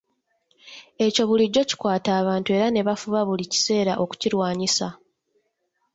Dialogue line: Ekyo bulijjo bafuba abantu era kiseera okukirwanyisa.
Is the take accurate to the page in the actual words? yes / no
no